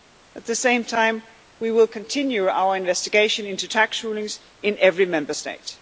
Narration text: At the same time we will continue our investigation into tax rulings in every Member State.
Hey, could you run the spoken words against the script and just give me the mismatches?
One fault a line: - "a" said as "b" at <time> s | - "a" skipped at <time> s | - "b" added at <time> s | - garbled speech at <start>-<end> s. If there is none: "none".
none